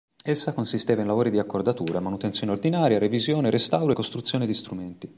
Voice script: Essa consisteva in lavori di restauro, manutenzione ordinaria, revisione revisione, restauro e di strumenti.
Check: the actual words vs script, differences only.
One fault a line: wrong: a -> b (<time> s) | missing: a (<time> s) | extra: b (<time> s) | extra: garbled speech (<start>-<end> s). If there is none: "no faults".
wrong: restauro -> accordatura (1.4 s)
missing: revisione (3.5 s)
extra: costruzione (3.9 s)